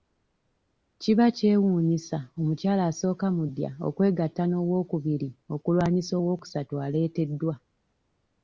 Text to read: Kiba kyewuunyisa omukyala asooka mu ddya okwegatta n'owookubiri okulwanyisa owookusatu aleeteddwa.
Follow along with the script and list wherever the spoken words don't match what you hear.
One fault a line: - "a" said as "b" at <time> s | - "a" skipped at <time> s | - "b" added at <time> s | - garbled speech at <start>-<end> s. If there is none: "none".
none